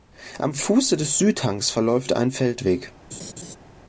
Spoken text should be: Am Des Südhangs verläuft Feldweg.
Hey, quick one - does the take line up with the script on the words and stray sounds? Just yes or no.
no